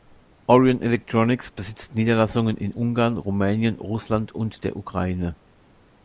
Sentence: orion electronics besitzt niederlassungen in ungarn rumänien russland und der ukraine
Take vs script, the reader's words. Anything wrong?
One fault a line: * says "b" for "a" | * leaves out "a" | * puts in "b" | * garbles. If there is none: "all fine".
all fine